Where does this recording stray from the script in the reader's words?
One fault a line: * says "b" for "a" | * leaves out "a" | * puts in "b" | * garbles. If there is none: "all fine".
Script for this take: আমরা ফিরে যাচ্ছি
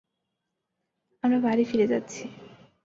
* puts in "বাড়ি"